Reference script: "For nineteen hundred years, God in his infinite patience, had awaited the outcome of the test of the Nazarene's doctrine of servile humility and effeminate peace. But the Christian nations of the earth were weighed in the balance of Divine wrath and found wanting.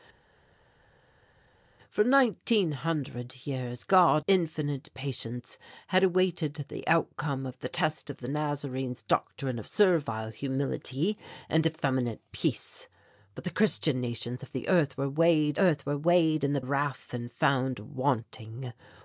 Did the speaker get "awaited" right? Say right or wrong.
right